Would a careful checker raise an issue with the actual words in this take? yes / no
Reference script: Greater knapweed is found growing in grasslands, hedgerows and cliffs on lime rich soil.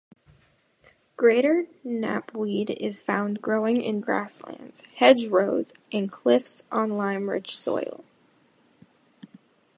no